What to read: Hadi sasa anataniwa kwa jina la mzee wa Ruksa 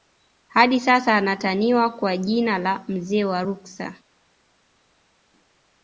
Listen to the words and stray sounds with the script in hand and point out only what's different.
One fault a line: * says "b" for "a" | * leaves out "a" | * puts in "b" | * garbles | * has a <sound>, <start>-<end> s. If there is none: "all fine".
all fine